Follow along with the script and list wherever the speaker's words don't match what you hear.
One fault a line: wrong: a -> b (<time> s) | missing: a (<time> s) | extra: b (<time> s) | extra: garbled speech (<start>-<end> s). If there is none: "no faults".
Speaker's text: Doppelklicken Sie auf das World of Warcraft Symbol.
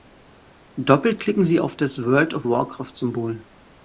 no faults